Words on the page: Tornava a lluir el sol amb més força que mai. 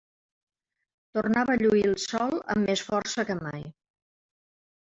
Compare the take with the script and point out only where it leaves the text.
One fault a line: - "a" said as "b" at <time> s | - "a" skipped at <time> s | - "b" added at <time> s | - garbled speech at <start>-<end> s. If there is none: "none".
none